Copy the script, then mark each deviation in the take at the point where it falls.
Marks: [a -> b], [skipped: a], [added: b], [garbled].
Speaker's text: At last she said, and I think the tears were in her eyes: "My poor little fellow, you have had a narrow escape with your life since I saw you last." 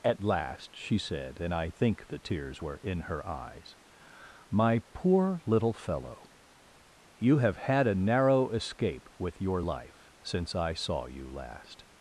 At last she said, and I think the tears were in her eyes: "My poor little fellow, you have had a narrow escape with your life since I saw you last."